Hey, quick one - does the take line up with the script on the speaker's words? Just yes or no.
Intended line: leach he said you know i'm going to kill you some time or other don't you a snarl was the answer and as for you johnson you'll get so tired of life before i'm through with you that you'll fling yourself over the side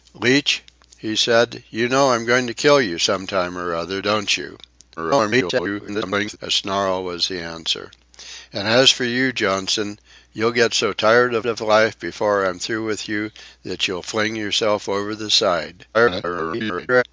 no